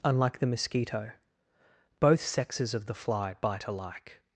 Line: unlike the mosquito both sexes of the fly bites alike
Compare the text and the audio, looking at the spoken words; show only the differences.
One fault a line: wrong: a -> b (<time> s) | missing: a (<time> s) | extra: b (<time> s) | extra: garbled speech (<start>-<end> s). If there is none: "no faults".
wrong: bites -> bite (3.4 s)